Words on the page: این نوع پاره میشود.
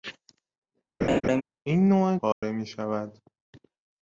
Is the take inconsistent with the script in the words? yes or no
no